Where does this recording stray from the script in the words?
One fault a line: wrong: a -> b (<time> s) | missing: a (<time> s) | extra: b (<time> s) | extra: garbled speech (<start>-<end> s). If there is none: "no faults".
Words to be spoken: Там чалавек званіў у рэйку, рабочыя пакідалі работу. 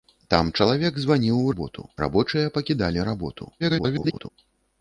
wrong: рэйку -> работу (1.5 s)
extra: garbled speech (3.6-4.3 s)